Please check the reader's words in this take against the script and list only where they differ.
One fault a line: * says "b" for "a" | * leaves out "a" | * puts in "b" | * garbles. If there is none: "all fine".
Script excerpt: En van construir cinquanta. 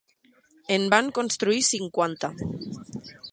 all fine